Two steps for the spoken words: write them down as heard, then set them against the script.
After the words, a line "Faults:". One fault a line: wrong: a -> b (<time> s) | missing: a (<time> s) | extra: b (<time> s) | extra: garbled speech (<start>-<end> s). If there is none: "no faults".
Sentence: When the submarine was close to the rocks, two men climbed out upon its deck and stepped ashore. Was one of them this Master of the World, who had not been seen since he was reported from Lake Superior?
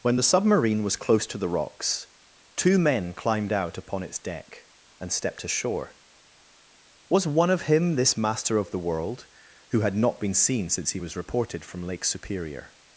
When the submarine was close to the rocks, two men climbed out upon its deck and stepped ashore. Was one of him this Master of the World, who had not been seen since he was reported from Lake Superior?
Faults:
wrong: them -> him (7.6 s)